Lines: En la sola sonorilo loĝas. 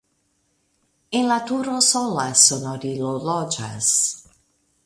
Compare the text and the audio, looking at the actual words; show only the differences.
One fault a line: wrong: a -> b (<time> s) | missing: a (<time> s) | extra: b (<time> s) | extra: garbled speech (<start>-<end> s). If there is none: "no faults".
extra: turo (1.5 s)